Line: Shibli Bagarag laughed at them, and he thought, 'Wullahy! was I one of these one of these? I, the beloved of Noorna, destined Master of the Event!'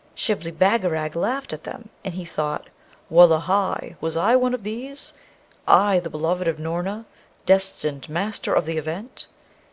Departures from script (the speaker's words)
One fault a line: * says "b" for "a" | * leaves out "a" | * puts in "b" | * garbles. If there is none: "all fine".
* leaves out "one of these"